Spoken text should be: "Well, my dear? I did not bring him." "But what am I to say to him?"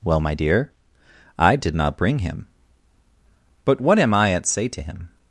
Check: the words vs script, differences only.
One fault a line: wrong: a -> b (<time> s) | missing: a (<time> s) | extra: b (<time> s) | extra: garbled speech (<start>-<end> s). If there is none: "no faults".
wrong: to -> at (4.3 s)